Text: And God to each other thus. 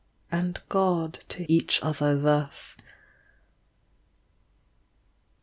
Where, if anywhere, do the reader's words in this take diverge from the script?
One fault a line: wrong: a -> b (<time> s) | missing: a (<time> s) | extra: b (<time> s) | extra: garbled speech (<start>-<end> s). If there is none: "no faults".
no faults